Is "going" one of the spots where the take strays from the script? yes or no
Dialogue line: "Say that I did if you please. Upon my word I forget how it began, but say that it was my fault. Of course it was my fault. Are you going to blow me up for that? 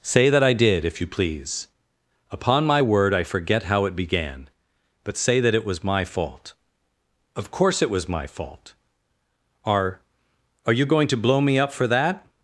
no